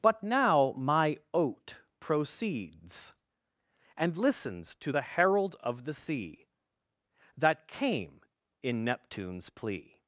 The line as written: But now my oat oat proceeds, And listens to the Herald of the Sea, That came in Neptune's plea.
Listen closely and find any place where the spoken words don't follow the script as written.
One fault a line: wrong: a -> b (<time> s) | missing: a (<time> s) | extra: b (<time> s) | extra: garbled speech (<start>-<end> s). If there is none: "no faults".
missing: oat (1.8 s)